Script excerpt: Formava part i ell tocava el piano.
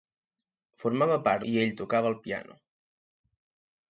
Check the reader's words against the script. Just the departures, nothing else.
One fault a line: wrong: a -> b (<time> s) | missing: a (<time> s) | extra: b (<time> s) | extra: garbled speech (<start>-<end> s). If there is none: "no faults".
no faults